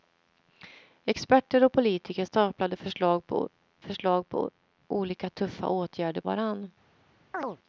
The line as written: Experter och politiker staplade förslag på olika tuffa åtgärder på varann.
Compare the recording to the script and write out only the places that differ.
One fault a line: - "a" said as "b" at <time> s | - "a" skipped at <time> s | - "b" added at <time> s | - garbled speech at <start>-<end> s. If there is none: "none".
- "förslag på" added at 3.8 s
- "på" skipped at 6.2 s